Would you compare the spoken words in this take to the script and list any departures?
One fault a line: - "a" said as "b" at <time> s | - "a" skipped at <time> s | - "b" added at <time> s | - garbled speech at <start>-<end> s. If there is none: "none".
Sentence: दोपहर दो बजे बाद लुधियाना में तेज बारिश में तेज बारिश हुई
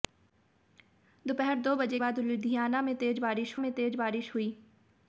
none